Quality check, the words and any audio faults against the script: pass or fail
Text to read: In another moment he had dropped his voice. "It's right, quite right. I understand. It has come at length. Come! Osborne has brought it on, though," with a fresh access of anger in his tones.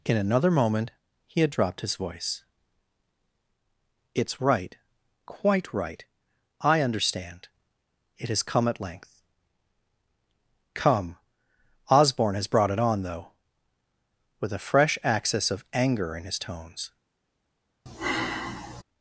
fail